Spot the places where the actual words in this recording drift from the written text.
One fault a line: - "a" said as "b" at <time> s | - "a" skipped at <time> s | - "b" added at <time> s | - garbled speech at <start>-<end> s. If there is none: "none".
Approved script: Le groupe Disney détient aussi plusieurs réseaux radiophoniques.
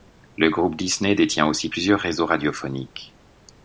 none